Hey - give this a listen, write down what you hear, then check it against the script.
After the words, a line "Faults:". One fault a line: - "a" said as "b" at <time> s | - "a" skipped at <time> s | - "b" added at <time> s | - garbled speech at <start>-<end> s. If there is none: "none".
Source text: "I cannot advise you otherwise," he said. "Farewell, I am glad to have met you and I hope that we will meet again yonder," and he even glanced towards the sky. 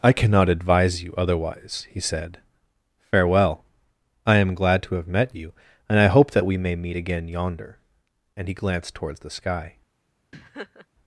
"I cannot advise you otherwise," he said. "Farewell, I am glad to have met you and I hope that we may meet again yonder," and he glanced towards the sky.
Faults:
- "will" said as "may" at 6.6 s
- "even" skipped at 8.5 s